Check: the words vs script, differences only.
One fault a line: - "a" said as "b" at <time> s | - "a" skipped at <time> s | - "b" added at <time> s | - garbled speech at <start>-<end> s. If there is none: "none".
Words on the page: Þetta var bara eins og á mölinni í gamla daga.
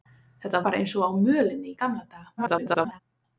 - "var" skipped at 0.6 s
- garbled speech at 2.4-3.0 s